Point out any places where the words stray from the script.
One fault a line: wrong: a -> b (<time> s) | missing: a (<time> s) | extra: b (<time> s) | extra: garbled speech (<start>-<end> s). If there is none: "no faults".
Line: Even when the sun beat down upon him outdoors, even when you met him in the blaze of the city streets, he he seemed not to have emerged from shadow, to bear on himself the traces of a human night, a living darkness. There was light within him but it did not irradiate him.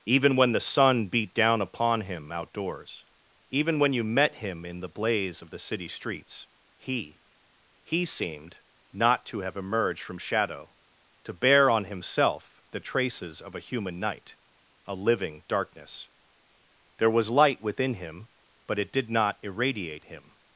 no faults